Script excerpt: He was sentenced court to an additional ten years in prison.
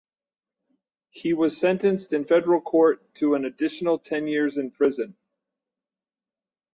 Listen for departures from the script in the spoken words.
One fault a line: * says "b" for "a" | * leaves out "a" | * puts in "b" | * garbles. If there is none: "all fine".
* puts in "in federal"